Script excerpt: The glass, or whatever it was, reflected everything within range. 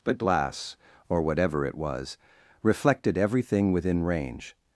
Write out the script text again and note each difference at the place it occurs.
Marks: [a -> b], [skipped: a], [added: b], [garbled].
[The -> But] glass, or whatever it was, reflected everything within range.